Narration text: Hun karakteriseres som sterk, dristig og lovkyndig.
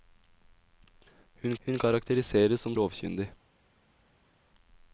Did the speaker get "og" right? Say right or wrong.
wrong